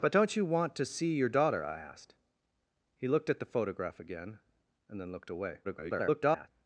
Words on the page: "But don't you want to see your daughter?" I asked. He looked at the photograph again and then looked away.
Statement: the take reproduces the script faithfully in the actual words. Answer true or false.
false